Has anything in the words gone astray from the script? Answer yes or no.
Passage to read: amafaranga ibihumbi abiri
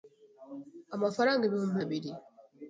no